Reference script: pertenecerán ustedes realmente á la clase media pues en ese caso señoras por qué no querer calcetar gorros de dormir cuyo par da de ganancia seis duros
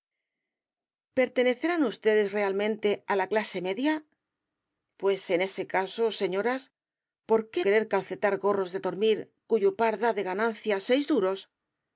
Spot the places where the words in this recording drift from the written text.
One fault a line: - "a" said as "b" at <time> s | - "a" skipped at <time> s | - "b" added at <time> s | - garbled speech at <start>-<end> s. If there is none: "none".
- "no" skipped at 7.6 s